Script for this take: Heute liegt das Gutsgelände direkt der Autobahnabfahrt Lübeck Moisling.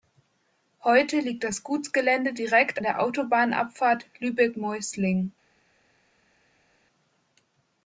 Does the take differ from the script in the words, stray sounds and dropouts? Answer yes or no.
no